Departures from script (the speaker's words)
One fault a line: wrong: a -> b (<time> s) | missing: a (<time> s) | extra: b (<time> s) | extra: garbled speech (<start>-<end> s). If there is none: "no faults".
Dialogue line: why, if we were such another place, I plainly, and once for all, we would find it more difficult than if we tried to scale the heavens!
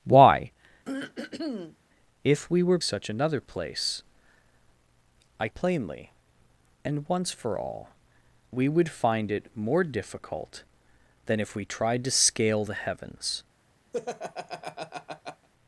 no faults